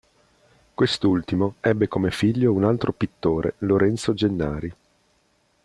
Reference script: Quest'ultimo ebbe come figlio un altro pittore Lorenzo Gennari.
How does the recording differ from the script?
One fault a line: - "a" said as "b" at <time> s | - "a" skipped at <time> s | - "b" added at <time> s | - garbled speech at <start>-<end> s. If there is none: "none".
none